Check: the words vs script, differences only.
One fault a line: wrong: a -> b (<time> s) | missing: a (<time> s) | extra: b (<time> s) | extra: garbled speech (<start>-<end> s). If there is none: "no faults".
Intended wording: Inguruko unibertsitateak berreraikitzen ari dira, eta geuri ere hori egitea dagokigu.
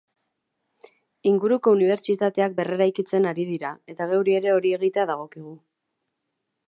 no faults